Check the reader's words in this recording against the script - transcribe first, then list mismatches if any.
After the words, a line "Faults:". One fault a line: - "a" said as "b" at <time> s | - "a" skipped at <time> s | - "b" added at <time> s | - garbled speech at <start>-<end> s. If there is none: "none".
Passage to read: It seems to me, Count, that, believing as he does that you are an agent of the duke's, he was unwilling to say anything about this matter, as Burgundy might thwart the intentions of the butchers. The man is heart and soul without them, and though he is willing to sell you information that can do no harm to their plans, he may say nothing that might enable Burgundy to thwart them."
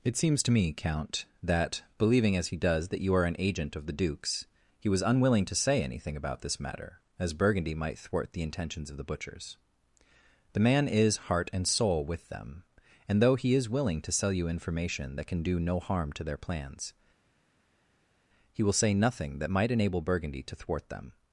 It seems to me, Count, that, believing as he does that you are an agent of the duke's, he was unwilling to say anything about this matter, as Burgundy might thwart the intentions of the butchers. The man is heart and soul with them, and though he is willing to sell you information that can do no harm to their plans, he will say nothing that might enable Burgundy to thwart them."
Faults:
- "without" said as "with" at 12.1 s
- "may" said as "will" at 18.6 s